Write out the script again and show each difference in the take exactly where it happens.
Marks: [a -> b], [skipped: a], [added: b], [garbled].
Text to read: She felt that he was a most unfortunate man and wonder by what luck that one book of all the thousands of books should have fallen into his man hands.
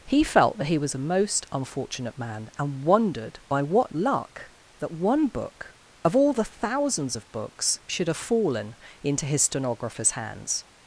[She -> He] felt that he was a most unfortunate man and [wonder -> wondered] by what luck that one book of all the thousands of books should have fallen into his [man -> stenographer's] hands.